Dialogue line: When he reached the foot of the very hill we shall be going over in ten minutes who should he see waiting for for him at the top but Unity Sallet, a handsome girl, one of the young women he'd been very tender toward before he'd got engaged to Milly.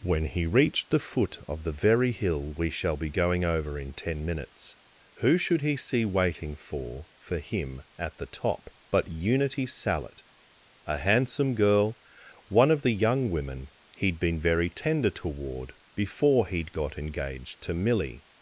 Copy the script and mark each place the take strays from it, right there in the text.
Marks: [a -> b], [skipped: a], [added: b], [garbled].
When he reached the foot of the very hill we shall be going over in ten minutes who should he see waiting for for him at the top but Unity Sallet, a handsome girl, one of the young women he'd been very tender toward before he'd got engaged to Milly.